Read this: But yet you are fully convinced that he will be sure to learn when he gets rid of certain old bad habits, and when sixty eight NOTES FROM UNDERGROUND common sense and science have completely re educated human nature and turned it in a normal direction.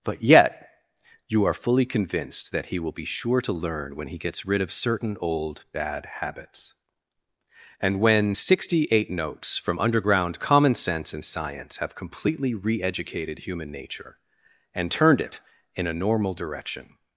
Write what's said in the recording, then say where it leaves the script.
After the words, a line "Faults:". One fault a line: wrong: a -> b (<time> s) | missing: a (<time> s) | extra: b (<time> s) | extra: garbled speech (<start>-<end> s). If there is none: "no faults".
But yet you are fully convinced that he will be sure to learn when he gets rid of certain old bad habits, and when sixty eight NOTES FROM UNDERGROUND common sense and science have completely re educated human nature and turned it in a normal direction.
Faults:
no faults